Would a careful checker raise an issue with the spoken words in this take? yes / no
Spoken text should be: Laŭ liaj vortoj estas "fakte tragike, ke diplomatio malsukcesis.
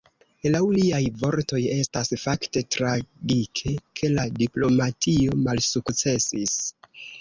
yes